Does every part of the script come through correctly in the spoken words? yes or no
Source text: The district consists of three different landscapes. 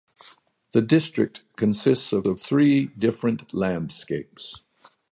no